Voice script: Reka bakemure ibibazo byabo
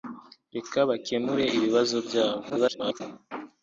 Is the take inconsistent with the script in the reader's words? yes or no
yes